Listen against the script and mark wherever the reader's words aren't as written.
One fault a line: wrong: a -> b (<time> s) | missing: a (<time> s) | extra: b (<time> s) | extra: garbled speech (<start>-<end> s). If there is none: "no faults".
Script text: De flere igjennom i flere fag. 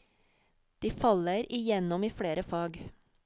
wrong: flere -> faller (0.9 s)